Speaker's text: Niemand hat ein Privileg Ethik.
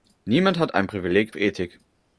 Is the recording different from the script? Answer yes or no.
no